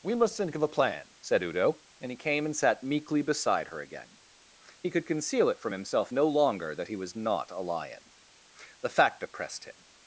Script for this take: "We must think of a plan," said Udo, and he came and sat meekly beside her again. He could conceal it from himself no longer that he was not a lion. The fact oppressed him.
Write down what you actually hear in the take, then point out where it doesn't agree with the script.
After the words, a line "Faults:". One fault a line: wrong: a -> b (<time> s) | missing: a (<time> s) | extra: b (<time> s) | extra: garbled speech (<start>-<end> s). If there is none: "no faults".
"We must think of a plan," said Udo, and he came and sat meekly beside her again. He could conceal it from himself no longer that he was not a lion. The fact oppressed him.
Faults:
no faults